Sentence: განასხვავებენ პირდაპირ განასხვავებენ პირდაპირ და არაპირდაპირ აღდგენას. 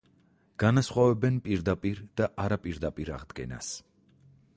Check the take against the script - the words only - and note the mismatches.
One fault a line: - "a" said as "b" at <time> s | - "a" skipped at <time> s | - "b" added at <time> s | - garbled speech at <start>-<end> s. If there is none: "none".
- "განასხვავებენ პირდაპირ" skipped at 2.0 s